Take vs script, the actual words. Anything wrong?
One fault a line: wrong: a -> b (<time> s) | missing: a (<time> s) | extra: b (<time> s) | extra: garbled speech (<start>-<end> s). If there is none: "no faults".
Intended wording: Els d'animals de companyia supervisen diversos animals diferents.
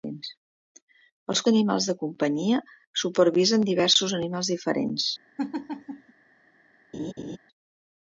no faults